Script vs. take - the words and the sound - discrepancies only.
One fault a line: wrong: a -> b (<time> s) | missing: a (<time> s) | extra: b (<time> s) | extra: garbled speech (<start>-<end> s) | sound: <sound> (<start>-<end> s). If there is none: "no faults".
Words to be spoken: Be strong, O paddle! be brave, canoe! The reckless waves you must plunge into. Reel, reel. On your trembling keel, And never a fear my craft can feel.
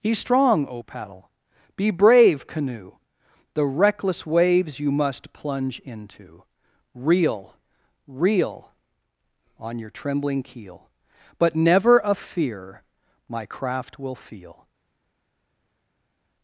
wrong: And -> But (11.4 s)
wrong: can -> will (14.0 s)